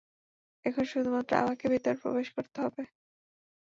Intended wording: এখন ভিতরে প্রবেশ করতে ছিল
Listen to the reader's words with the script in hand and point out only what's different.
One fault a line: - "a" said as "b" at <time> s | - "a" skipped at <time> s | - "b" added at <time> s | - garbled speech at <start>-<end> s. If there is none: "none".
- "শুধুমাত্র আমাকে" added at 0.8 s
- "ছিল" said as "হবে" at 2.6 s